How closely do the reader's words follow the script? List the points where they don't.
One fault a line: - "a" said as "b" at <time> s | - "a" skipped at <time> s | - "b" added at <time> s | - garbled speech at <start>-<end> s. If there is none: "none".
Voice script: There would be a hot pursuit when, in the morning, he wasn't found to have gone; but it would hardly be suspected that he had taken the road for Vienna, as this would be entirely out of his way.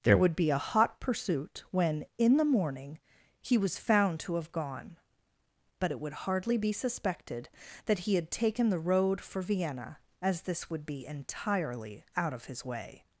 - "wasn't" said as "was" at 3.5 s